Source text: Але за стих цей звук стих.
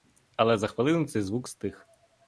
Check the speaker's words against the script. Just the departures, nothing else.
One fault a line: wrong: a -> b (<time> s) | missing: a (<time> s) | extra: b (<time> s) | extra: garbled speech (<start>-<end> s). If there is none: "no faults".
wrong: стих -> хвилину (0.6 s)